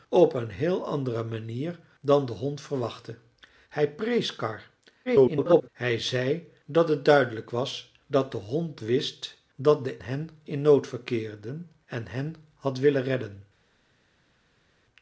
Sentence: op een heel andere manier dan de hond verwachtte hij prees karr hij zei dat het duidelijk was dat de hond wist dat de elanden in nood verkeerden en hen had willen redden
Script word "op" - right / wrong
right